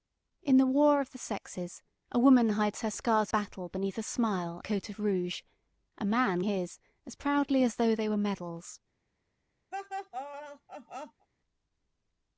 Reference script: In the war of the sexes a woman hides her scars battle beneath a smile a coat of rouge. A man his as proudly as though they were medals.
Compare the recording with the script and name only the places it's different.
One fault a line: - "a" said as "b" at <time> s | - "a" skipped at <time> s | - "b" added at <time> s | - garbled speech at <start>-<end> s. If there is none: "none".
none